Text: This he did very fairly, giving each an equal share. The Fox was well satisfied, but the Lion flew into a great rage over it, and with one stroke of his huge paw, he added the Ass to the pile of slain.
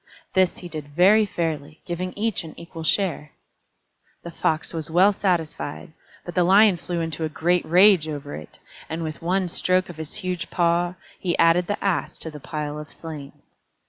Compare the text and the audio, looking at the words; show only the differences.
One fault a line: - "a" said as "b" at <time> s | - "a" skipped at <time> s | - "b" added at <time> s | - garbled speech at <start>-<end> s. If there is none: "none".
none